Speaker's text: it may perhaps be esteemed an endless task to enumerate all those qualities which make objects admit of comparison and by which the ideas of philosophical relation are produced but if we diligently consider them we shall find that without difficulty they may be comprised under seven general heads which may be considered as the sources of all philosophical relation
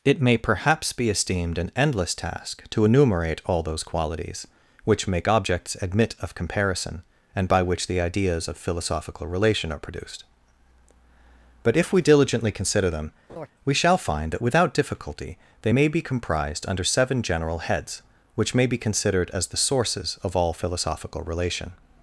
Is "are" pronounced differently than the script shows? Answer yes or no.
no